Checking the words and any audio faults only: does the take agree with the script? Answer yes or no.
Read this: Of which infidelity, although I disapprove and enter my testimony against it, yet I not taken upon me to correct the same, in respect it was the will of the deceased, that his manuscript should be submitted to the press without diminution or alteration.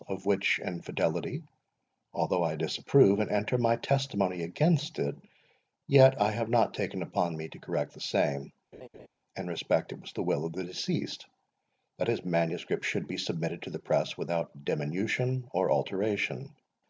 no